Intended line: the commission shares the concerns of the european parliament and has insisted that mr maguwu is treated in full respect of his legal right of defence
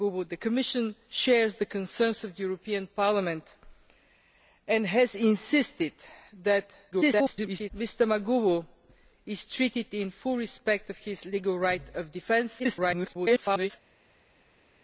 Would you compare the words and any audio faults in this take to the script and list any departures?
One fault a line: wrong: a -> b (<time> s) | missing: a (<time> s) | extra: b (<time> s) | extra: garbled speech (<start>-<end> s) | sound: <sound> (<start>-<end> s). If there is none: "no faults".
extra: garbled speech (6.9-7.7 s)
extra: garbled speech (12.6-13.7 s)